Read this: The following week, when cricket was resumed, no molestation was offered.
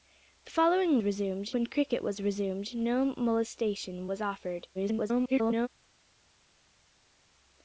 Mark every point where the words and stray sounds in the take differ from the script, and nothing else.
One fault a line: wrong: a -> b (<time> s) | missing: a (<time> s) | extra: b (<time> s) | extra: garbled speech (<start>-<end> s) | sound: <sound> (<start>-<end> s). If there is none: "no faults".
wrong: week -> resumed (1.0 s)
extra: garbled speech (4.7-5.7 s)